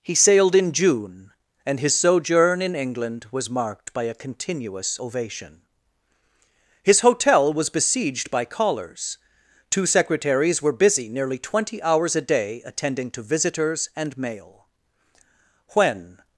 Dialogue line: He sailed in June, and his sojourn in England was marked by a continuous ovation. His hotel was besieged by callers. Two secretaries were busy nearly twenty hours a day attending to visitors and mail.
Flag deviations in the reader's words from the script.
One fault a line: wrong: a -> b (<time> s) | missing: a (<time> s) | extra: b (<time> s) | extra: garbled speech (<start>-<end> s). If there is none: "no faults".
extra: When (15.7 s)